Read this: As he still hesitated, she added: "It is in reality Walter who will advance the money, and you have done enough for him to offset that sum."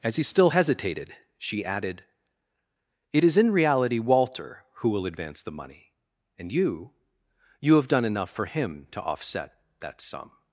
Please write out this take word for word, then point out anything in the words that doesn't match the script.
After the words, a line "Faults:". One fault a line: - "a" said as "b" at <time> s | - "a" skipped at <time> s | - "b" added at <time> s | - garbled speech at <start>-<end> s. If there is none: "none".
As he still hesitated, she added: "It is in reality Walter who will advance the money, and you you have done enough for him to offset that sum."
Faults:
- "you" added at 7.6 s